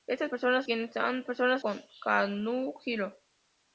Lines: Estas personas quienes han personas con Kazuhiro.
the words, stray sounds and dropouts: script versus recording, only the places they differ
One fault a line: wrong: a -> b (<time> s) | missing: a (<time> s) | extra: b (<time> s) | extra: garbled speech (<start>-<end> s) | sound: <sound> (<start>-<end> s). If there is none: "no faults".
no faults